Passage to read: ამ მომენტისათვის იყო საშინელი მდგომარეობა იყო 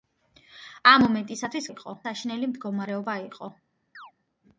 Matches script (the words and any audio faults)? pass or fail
fail